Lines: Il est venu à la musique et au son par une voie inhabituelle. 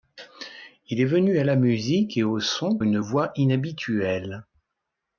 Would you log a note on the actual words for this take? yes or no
yes